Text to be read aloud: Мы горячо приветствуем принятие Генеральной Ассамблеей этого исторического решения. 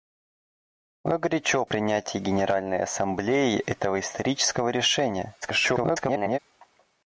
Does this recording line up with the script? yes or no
no